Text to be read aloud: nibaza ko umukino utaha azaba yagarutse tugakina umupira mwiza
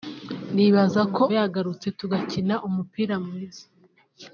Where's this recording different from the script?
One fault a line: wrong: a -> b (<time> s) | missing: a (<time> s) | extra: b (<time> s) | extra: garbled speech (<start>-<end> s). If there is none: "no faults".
missing: umukino utaha azaba (1.2 s)